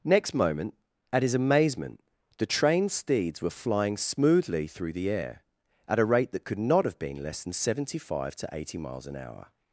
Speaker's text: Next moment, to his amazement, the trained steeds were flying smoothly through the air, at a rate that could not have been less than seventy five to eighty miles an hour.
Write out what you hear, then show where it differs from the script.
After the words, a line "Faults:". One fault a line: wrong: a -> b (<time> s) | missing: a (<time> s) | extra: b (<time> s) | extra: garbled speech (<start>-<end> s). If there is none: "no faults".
Next moment, at his amazement, the trained steeds were flying smoothly through the air, at a rate that could not have been less than seventy five to eighty miles an hour.
Faults:
wrong: to -> at (1.1 s)